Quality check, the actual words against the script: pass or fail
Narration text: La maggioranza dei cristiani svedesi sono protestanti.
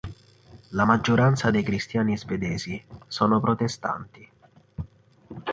pass